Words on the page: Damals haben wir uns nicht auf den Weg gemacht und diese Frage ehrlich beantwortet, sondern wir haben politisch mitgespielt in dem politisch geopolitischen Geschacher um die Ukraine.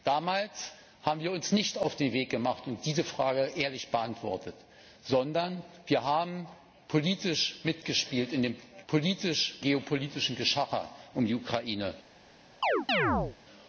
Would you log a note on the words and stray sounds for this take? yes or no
yes